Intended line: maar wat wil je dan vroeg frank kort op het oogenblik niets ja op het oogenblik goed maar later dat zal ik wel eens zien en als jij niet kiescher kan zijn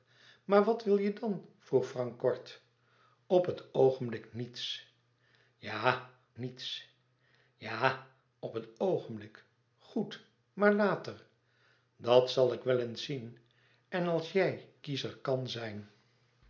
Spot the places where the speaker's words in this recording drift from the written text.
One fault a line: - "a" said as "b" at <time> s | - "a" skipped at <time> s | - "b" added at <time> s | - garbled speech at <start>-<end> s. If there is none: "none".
- "niets ja" added at 6.4 s
- "niet" skipped at 14.7 s